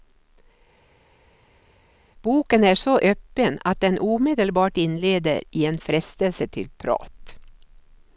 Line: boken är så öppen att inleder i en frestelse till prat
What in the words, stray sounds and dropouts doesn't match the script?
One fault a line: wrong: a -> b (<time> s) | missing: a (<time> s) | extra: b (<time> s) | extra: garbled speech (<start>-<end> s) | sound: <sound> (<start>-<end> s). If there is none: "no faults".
extra: den omedelbart (3.8 s)